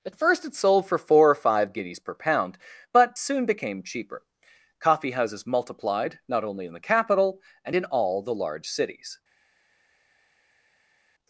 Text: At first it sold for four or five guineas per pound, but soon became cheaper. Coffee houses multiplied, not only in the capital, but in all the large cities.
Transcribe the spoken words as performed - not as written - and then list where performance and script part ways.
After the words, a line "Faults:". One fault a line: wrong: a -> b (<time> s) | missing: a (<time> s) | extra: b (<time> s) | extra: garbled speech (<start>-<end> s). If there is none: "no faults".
At first it sold for four or five guineas per pound, but soon became cheaper. Coffee houses multiplied, not only in the capital, and in all the large cities.
Faults:
wrong: but -> and (7.6 s)